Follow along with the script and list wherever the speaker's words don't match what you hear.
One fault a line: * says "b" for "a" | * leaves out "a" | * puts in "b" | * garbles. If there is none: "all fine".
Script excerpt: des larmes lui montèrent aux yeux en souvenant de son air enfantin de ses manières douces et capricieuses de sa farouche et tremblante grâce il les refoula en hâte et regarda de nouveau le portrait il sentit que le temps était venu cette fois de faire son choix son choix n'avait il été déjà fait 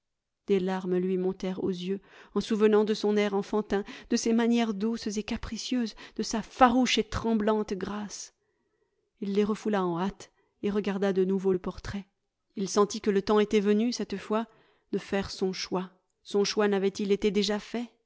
all fine